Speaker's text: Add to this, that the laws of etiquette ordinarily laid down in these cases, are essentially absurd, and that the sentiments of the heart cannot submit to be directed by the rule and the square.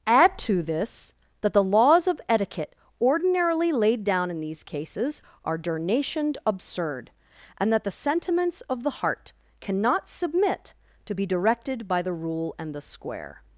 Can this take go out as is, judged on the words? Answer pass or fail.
fail